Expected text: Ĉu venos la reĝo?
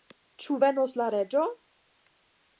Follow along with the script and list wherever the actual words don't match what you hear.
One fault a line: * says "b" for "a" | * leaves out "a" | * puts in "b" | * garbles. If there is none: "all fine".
all fine